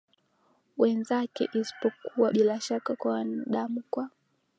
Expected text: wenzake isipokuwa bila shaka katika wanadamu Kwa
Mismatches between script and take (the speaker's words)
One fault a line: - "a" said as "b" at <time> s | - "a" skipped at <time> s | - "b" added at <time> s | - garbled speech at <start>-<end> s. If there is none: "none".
- "katika" said as "kwa" at 2.9 s